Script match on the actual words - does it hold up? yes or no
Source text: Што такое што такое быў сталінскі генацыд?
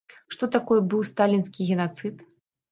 no